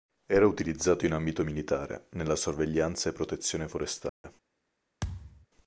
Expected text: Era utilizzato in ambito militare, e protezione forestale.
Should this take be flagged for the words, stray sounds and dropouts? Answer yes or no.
yes